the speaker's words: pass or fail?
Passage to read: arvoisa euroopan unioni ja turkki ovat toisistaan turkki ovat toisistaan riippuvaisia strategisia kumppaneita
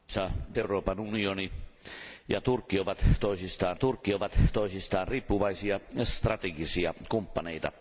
pass